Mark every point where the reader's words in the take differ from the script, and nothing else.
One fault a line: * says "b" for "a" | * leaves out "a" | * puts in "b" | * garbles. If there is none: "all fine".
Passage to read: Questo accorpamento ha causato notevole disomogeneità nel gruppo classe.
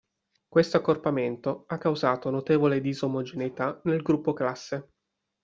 all fine